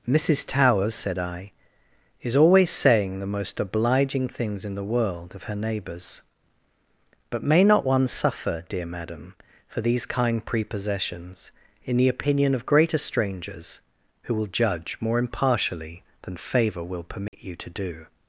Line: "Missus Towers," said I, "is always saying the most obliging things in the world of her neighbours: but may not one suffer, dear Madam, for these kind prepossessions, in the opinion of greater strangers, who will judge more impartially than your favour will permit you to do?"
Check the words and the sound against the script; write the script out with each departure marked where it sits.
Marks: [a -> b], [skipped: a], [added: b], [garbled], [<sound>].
"Missus Towers," said I, "is always saying the most obliging things in the world of her neighbours: but may not one suffer, dear Madam, for these kind prepossessions, in the opinion of greater strangers, who will judge more impartially than [skipped: your] favour will permit [dropout] you to do?"